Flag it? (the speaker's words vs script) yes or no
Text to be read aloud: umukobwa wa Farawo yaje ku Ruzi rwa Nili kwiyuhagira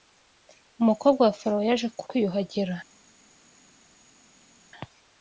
yes